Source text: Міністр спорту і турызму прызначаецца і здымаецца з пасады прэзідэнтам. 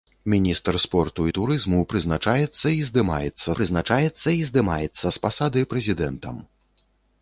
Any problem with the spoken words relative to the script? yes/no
yes